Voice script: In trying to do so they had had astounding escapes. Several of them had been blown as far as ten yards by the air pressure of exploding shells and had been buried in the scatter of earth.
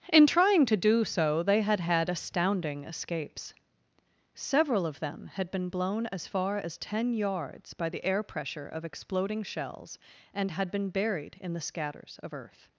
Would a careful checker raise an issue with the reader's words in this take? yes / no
yes